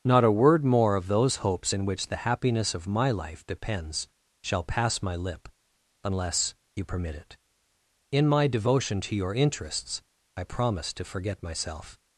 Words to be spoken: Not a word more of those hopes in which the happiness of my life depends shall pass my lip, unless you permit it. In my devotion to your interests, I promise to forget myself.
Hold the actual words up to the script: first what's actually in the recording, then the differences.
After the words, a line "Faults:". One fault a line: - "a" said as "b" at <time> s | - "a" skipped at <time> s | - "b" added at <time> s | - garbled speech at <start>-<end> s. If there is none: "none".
Not a word more of those hopes in which the happiness of my life depends shall pass my lip, unless you permit it. In my devotion to your interests, I promise to forget myself.
Faults:
none